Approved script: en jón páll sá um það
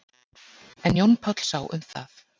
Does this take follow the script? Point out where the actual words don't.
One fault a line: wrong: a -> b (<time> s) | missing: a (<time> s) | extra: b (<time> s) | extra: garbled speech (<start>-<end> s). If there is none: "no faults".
no faults